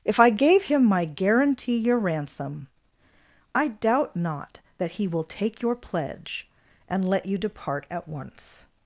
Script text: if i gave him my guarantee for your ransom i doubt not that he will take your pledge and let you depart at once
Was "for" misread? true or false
true